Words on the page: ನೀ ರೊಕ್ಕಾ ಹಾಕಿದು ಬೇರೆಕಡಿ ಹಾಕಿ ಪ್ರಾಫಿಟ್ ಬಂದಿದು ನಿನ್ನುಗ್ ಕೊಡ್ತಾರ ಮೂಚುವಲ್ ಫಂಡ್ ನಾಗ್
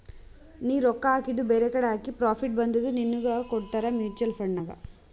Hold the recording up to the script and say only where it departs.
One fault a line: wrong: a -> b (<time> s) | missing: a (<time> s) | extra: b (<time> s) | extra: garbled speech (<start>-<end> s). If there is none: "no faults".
no faults